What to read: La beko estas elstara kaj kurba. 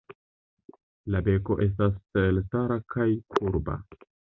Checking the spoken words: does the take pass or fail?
pass